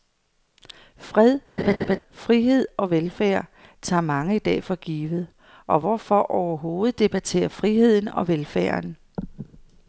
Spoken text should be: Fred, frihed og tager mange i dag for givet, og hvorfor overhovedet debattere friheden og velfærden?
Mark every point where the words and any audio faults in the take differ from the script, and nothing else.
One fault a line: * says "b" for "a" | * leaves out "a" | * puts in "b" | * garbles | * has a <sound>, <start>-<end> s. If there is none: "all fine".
* has a laugh, 1.6-2.0 s
* puts in "velfærd"